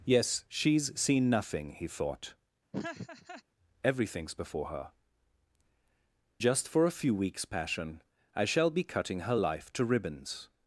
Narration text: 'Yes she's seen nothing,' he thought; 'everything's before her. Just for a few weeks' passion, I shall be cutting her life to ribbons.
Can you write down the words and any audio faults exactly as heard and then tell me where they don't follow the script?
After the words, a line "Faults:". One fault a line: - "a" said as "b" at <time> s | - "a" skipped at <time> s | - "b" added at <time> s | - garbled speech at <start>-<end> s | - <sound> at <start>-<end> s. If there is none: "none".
'Yes she's seen nothing,' he thought; 'everything's before her. Just for a few weeks' passion, I shall be cutting her life to ribbons.
Faults:
- laugh at 2.7-3.4 s